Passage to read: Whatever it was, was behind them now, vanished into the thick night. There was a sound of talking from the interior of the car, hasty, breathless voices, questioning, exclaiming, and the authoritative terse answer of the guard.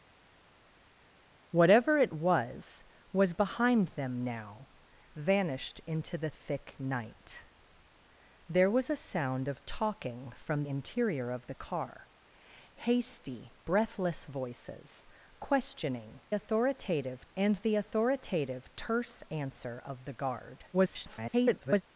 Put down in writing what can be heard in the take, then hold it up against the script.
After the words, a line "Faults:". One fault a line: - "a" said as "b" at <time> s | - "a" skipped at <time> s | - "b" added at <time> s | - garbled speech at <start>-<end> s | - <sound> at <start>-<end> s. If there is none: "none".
Whatever it was, was behind them now, vanished into the thick night. There was a sound of talking from interior of the car, hasty, breathless voices, questioning, authoritative, and the authoritative terse answer of the guard. [garbled]
Faults:
- "the" skipped at 10.6 s
- "exclaiming" said as "authoritative" at 16.3 s
- garbled speech at 20.7-21.8 s